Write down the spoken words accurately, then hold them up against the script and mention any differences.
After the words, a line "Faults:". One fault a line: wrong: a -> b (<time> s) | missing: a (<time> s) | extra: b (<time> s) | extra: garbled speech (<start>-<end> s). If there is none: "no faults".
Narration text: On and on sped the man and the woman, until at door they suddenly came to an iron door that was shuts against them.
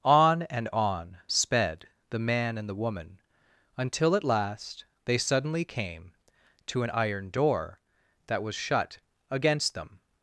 On and on sped the man and the woman, until at last they suddenly came to an iron door that was shut against them.
Faults:
wrong: door -> last (4.2 s)
wrong: shuts -> shut (8.5 s)